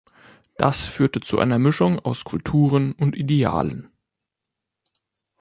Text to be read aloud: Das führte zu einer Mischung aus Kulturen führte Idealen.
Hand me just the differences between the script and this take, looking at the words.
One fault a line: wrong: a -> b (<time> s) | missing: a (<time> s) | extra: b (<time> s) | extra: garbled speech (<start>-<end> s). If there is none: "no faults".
wrong: führte -> und (2.9 s)